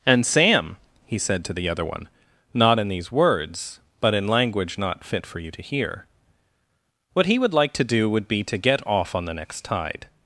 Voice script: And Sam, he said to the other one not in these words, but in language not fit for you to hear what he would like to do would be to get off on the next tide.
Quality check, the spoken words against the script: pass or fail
pass